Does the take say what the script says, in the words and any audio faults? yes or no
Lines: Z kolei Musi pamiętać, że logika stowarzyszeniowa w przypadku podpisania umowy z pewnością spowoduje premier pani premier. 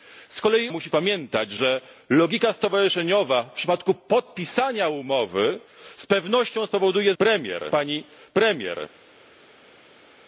yes